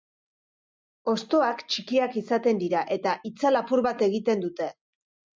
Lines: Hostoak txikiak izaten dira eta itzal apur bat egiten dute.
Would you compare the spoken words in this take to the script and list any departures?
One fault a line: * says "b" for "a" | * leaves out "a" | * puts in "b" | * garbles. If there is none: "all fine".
all fine